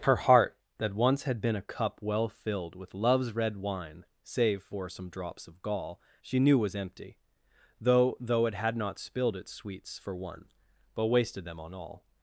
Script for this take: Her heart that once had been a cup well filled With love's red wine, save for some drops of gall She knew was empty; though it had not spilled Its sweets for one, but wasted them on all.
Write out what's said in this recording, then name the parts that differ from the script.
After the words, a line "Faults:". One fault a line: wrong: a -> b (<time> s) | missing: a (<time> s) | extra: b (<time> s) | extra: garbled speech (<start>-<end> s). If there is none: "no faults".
Her heart that once had been a cup well filled With love's red wine, save for some drops of gall She knew was empty; though though it had not spilled Its sweets for one, but wasted them on all.
Faults:
extra: though (8.2 s)